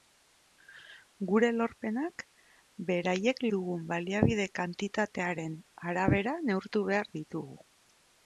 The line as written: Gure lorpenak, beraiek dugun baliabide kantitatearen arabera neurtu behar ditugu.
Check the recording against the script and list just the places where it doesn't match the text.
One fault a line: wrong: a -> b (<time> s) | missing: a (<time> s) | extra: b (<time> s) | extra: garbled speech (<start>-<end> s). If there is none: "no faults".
no faults